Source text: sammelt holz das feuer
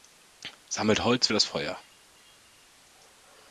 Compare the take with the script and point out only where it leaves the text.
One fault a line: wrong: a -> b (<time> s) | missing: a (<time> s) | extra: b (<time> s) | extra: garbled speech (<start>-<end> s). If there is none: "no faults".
no faults